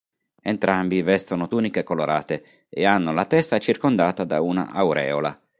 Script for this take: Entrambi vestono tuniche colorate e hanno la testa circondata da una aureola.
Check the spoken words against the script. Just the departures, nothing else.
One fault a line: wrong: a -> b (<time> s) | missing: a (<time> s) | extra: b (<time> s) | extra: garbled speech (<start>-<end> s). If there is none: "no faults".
no faults